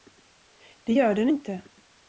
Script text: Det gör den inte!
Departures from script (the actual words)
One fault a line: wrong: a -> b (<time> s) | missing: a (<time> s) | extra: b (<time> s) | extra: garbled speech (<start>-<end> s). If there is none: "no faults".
no faults